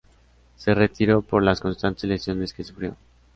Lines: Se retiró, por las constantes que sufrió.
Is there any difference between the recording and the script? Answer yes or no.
yes